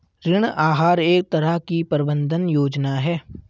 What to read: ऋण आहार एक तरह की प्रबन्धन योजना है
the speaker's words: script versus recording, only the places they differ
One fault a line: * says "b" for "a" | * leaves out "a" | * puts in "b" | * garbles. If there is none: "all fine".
all fine